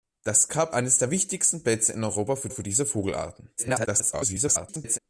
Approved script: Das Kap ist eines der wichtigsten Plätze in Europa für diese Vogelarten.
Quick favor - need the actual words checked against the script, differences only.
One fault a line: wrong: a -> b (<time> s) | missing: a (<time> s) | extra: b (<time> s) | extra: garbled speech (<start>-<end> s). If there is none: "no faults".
missing: ist (0.8 s)
extra: für (2.5 s)
extra: garbled speech (3.6-5.0 s)